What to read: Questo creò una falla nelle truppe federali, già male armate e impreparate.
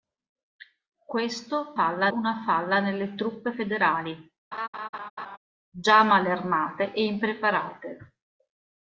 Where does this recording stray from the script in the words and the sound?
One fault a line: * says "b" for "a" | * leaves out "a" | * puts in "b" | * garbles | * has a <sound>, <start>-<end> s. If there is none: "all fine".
* says "falla" for "creò"
* has a laugh, 4.5-5.4 s